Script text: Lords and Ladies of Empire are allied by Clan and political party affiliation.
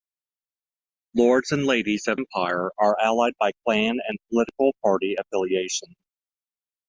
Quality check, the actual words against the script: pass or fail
pass